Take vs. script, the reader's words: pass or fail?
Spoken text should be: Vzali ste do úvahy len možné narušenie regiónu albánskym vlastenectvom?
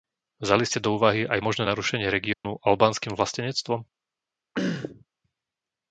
fail